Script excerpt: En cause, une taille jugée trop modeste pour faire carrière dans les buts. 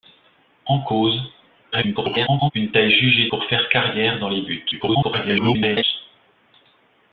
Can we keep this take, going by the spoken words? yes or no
no